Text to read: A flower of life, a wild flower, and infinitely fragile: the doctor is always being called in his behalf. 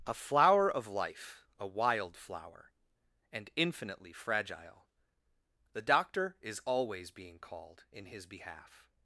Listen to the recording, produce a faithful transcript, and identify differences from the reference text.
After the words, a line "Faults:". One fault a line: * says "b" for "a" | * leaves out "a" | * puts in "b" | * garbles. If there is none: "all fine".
A flower of life, a wild flower, and infinitely fragile: the doctor is always being called in his behalf.
Faults:
all fine